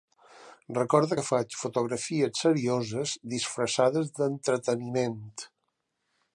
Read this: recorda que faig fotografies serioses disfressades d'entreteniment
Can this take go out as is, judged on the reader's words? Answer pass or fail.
pass